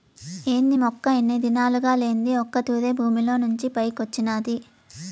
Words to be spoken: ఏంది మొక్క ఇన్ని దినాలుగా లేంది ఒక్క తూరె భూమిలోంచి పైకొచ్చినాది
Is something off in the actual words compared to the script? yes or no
no